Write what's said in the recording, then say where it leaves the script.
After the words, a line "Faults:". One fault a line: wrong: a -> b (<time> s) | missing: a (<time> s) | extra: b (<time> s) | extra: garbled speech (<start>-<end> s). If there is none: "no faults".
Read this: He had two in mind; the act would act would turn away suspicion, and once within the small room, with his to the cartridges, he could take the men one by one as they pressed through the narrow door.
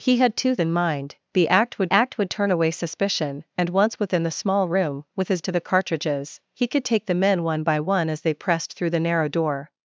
He had two in mind; the act would act would turn away suspicion, and once within the small room, with his to the cartridges, he could take the men one by one as they pressed through the narrow door.
Faults:
no faults